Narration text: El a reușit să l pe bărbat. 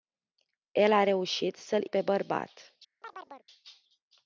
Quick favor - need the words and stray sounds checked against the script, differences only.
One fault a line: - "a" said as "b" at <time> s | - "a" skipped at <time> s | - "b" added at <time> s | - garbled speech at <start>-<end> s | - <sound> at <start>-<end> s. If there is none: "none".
- chirp at 3.0-3.5 s